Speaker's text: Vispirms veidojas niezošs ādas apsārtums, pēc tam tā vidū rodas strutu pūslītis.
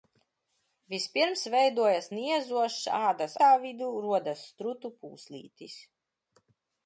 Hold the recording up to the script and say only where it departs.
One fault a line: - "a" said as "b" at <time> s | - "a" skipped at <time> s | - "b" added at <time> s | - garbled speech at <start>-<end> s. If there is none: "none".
- "apsārtums pēc tam" skipped at 3.3 s